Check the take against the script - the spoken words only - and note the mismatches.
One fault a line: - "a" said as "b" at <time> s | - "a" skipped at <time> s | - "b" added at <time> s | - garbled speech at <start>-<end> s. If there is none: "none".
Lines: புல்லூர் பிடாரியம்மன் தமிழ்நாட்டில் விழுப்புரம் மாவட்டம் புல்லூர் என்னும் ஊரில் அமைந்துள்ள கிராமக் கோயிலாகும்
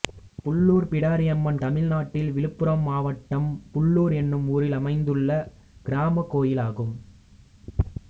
none